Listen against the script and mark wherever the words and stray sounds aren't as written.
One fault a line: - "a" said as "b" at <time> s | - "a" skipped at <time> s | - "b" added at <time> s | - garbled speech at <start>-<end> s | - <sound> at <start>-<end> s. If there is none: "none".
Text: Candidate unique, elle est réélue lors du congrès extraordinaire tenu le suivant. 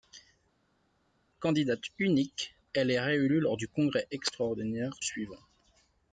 - "tenu le" skipped at 4.9 s